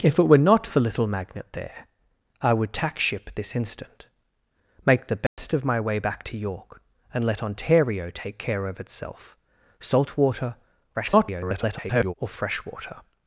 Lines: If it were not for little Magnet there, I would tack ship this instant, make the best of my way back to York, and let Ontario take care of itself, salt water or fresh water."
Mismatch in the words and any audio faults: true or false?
true